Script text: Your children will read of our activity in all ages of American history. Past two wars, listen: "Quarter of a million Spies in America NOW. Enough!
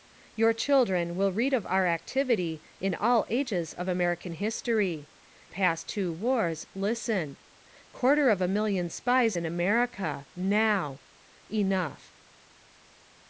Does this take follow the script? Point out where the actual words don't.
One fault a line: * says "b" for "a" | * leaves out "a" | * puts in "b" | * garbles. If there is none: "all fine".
all fine